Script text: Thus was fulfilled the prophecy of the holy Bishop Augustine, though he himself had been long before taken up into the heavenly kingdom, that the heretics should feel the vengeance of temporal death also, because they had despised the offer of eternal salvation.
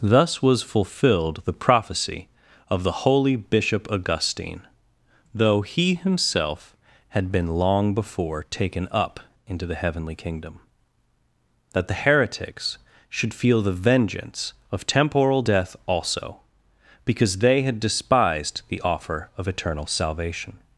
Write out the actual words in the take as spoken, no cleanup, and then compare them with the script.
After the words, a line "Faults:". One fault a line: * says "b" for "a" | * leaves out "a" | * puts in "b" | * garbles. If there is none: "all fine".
Thus was fulfilled the prophecy of the holy Bishop Augustine, though he himself had been long before taken up into the heavenly kingdom, that the heretics should feel the vengeance of temporal death also, because they had despised the offer of eternal salvation.
Faults:
all fine